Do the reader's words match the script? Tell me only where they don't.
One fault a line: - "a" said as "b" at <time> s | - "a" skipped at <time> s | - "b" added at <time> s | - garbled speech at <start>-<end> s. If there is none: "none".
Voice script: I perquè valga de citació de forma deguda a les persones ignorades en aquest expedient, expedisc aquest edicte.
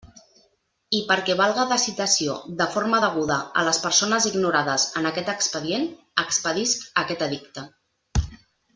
none